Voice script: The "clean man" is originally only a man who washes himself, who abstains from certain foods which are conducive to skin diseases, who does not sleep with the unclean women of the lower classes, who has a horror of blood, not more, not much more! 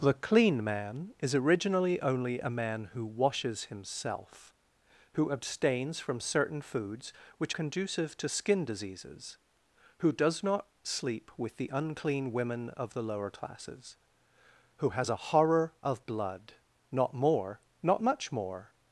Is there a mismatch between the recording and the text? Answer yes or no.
yes